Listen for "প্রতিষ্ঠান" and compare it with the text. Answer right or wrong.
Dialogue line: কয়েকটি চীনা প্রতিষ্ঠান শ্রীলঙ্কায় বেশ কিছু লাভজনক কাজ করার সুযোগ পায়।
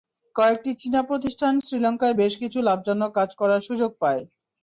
right